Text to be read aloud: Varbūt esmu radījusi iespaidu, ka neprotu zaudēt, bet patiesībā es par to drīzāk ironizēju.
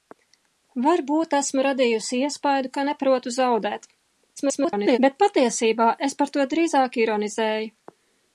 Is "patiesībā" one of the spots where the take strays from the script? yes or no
no